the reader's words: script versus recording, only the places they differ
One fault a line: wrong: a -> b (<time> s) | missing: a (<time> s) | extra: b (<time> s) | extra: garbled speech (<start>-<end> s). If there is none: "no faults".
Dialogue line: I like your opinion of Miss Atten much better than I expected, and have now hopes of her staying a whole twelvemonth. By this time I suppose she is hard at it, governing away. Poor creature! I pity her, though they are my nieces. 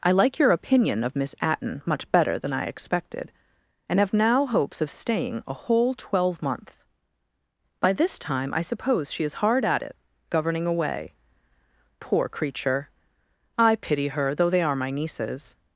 missing: her (4.9 s)